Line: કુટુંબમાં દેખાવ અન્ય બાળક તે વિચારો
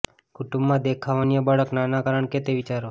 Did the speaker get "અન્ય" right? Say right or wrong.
right